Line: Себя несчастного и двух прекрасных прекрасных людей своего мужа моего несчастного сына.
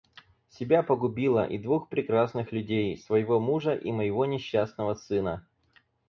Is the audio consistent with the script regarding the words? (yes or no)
no